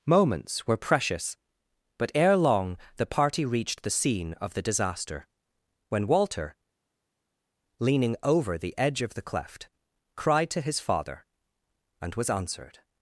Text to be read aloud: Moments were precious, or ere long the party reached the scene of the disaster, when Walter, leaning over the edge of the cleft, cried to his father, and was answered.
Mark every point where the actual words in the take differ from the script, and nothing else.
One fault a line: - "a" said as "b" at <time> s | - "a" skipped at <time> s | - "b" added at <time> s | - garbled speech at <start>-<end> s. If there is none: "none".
- "or" said as "but" at 2.0 s